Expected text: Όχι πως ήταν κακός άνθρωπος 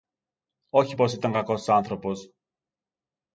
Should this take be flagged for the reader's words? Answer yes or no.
no